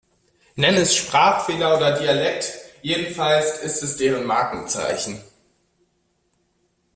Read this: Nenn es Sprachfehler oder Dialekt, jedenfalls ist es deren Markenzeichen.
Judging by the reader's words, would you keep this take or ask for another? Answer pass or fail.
pass